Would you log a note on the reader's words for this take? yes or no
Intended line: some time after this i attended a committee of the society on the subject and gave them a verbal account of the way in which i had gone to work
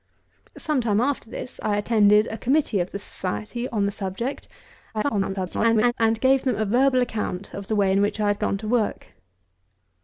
yes